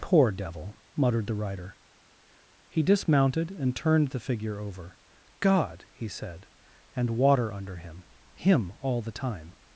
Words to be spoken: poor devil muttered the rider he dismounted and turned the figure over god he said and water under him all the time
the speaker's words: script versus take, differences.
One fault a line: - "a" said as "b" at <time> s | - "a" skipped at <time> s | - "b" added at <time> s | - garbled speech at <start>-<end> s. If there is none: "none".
- "him" added at 8.3 s